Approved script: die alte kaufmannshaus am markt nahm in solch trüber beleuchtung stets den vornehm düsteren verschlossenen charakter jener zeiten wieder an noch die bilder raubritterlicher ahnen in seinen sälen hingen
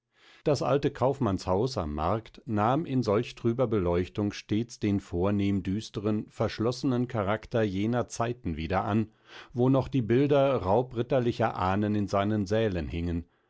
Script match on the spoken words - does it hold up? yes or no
no